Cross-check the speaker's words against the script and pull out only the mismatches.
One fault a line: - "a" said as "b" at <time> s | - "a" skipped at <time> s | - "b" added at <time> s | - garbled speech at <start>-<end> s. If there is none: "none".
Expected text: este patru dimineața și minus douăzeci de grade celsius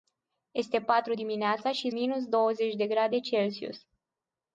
none